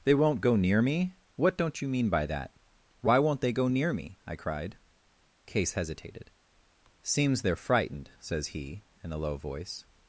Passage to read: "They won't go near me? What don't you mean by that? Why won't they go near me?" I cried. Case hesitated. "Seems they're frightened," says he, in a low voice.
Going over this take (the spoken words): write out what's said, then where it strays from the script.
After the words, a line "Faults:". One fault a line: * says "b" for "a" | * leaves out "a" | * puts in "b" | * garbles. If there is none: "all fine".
"They won't go near me? What don't you mean by that? Why won't they go near me?" I cried. Case hesitated. "Seems they're frightened," says he, in a low voice.
Faults:
all fine